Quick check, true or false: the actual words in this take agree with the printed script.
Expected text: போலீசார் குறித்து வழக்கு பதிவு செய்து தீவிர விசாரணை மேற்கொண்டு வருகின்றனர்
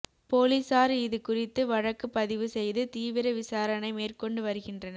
false